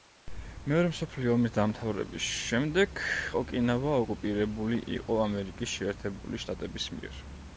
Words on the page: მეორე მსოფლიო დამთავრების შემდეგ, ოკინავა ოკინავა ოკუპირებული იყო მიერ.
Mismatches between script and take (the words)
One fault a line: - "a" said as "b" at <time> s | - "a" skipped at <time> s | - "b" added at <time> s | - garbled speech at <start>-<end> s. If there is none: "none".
- "ომის" added at 1.3 s
- "ოკინავა" skipped at 4.0 s
- "ამერიკის შეერთებული შტატების" added at 5.3 s